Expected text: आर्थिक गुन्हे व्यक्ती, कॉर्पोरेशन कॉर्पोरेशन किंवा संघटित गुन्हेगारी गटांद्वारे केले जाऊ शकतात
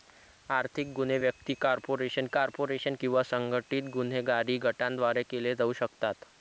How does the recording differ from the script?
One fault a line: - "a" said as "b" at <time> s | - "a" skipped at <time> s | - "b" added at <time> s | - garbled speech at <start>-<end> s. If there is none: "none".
none